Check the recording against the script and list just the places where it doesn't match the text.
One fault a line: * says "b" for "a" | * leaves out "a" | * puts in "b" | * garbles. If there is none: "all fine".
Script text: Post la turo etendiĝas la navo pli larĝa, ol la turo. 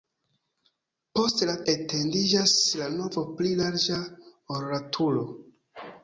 * leaves out "turo"